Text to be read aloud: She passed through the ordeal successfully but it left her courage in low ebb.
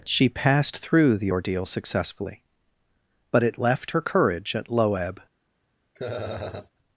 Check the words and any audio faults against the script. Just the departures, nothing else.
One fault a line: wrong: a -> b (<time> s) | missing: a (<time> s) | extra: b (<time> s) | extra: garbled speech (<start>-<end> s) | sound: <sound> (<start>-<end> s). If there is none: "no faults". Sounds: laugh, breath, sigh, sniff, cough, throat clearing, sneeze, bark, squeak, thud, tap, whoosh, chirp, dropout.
wrong: in -> at (4.5 s)
sound: laugh (5.9-6.7 s)